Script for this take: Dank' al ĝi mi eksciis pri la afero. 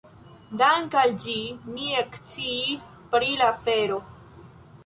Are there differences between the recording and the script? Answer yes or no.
no